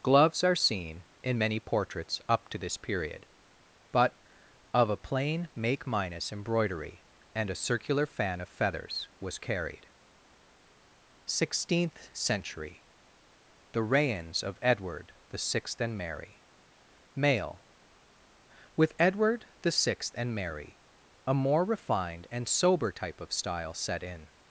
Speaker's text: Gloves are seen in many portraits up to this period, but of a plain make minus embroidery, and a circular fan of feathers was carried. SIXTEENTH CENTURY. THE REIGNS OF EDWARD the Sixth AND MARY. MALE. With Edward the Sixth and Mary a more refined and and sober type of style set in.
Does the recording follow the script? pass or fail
fail